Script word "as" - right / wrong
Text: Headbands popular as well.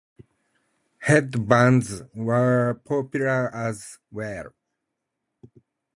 right